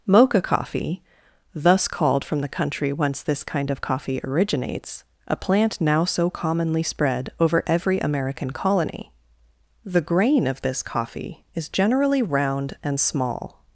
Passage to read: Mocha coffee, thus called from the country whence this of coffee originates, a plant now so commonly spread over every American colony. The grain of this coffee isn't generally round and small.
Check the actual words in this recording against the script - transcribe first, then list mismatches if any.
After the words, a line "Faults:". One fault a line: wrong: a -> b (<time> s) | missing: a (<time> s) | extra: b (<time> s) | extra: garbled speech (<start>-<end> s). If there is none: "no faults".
Mocha coffee, thus called from the country whence this kind of coffee originates, a plant now so commonly spread over every American colony. The grain of this coffee is generally round and small.
Faults:
extra: kind (3.4 s)
wrong: isn't -> is (11.6 s)